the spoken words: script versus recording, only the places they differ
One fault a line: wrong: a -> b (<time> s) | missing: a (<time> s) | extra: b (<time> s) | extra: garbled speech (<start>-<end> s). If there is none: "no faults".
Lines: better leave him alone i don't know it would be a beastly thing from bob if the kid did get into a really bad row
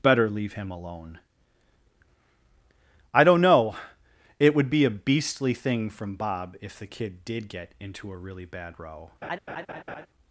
no faults